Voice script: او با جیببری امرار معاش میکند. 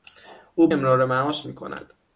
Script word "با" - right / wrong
wrong